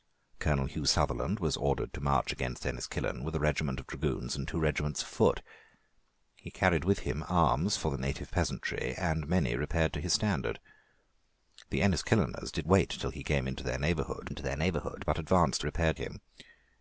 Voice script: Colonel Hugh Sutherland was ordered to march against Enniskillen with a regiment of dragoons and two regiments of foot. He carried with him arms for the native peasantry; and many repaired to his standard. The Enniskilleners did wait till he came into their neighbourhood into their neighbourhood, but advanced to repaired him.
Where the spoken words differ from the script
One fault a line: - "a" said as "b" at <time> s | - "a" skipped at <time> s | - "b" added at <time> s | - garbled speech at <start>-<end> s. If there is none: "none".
none